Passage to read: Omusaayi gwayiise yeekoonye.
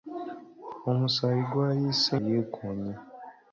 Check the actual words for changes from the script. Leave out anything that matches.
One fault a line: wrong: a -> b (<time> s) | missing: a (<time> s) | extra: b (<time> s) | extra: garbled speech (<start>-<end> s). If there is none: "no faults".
no faults